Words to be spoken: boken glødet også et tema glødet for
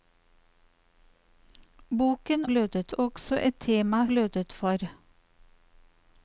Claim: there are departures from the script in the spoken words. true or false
false